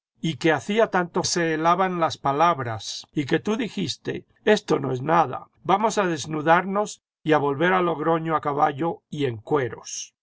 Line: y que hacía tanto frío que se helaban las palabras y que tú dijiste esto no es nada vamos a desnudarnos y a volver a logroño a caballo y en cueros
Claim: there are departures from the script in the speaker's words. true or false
true